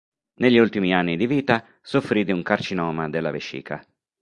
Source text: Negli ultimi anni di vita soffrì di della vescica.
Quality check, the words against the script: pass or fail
fail